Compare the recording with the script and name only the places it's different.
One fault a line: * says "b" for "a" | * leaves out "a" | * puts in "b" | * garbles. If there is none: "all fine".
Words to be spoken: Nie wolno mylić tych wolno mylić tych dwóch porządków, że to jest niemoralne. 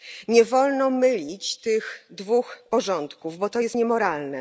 * leaves out "wolno mylić tych"
* says "bo" for "że"